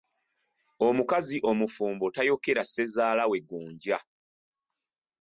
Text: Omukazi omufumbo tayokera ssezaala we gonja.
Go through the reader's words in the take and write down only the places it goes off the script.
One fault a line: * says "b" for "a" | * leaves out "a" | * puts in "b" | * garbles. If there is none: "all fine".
all fine